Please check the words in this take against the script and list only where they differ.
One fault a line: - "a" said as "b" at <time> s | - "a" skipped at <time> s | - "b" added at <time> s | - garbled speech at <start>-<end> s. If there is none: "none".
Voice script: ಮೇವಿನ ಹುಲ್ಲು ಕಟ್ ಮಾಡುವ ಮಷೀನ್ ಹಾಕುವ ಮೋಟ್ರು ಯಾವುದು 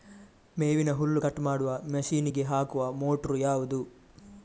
- "ಗೆ" added at 2.3 s